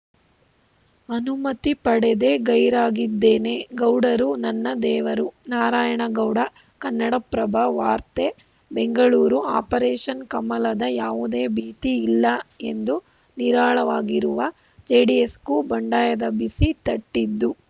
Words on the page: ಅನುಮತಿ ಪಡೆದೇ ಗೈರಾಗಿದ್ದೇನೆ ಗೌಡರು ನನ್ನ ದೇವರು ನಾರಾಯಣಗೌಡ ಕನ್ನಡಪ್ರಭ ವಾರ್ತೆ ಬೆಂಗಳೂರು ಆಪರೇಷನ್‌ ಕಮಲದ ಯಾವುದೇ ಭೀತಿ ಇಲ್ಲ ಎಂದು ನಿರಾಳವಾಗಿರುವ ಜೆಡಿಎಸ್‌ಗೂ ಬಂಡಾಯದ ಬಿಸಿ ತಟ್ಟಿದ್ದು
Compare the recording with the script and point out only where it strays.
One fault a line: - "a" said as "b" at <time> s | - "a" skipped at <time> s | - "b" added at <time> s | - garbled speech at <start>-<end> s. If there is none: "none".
none